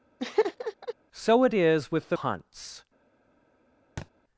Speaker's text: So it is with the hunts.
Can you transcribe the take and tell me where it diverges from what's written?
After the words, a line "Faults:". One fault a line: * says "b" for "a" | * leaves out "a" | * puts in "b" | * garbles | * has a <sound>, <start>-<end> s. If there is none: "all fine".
So it is with the hunts.
Faults:
* has a laugh, 0.2-0.9 s
* has a thud, 4.0-4.1 s